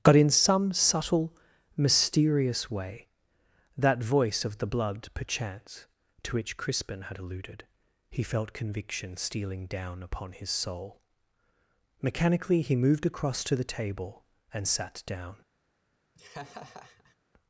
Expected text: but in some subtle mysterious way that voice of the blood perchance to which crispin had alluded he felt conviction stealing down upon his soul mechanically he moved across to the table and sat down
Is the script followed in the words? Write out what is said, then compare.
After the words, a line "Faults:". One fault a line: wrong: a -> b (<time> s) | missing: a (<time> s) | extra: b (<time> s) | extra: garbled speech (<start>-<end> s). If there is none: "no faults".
but in some subtle mysterious way that voice of the blood perchance to which crispin had alluded he felt conviction stealing down upon his soul mechanically he moved across to the table and sat down
Faults:
no faults